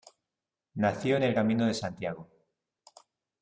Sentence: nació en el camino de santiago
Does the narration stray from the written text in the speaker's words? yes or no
no